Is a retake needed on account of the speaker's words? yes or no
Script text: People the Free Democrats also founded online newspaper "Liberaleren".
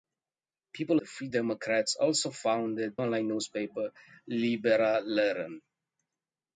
no